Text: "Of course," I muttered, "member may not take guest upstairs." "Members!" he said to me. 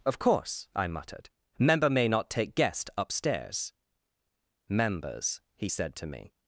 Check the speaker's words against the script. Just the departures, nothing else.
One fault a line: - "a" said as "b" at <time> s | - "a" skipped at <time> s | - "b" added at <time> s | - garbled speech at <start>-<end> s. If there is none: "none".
none